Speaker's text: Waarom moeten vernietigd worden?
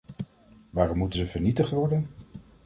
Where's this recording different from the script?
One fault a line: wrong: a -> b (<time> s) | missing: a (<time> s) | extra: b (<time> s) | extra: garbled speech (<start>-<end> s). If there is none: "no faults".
extra: ze (1.1 s)